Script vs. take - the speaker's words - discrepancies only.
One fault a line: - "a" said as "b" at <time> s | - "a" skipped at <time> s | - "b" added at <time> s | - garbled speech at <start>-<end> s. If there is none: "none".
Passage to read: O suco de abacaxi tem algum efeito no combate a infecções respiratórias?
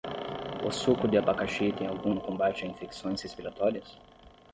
- "efeito" skipped at 2.1 s